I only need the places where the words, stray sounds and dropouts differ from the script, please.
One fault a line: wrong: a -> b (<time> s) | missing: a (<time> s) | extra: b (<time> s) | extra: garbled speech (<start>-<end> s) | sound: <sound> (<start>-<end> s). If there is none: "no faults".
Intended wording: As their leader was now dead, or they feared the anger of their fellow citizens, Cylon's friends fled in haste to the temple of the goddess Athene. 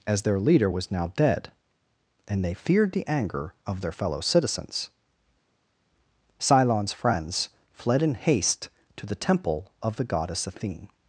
wrong: or -> and (2.2 s)